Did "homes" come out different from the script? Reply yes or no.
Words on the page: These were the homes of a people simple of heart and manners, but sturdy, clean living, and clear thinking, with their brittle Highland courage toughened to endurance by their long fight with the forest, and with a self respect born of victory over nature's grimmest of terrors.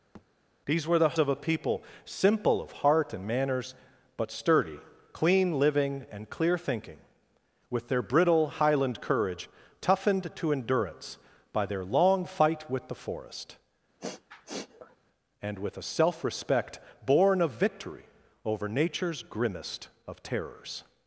yes